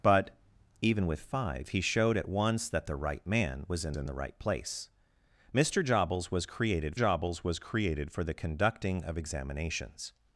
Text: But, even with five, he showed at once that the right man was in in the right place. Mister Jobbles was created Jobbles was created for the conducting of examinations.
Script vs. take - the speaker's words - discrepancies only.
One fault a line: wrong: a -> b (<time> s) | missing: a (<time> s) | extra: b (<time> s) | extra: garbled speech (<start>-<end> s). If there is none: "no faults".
no faults